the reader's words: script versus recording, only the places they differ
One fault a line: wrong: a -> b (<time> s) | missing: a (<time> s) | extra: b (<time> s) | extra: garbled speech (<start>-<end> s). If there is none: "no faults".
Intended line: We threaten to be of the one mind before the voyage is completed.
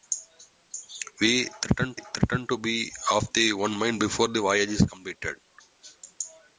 extra: threaten (1.9 s)